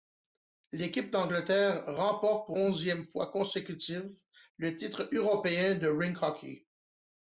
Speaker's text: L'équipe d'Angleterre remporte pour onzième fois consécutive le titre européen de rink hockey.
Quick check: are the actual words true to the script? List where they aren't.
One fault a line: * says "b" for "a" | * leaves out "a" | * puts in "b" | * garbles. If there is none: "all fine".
all fine